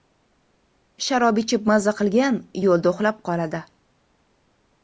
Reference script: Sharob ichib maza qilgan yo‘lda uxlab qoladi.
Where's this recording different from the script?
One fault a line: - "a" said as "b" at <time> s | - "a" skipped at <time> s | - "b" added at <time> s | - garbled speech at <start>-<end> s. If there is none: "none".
none